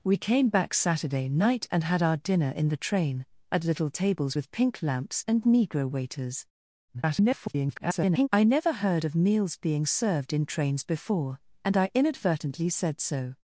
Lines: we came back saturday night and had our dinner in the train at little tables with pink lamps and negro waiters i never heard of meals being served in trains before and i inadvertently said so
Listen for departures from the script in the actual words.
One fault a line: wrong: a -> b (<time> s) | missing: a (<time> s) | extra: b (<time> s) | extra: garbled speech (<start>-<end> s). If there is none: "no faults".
extra: garbled speech (6.9-8.3 s)